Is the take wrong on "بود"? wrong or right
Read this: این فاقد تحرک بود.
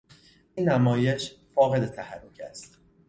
wrong